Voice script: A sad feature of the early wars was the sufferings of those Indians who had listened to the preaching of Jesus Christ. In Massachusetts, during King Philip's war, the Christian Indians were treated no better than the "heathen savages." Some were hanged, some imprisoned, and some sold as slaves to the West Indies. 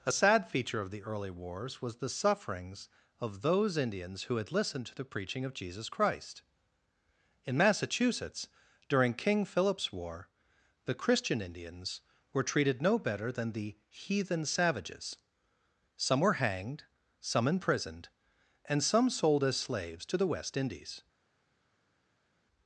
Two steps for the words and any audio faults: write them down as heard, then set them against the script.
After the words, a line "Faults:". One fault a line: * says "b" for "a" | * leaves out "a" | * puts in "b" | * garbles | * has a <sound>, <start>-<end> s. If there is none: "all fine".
A sad feature of the early wars was the sufferings of those Indians who had listened to the preaching of Jesus Christ. In Massachusetts, during King Philip's war, the Christian Indians were treated no better than the "heathen savages." Some were hanged, some imprisoned, and some sold as slaves to the West Indies.
Faults:
all fine